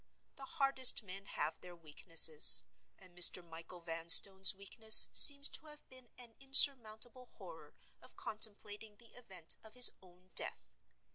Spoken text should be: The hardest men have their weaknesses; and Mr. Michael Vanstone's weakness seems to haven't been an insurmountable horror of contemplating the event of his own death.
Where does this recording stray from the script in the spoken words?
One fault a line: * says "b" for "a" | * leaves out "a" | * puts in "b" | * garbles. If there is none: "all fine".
* says "have" for "haven't"